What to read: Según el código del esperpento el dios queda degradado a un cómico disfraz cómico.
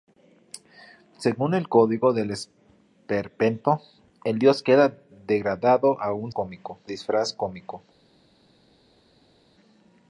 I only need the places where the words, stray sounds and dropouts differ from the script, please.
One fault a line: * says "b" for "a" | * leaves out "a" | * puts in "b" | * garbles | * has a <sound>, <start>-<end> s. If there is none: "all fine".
all fine